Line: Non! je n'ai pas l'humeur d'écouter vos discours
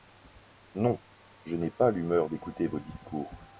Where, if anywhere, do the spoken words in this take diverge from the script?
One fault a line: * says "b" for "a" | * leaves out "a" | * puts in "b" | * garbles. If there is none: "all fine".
all fine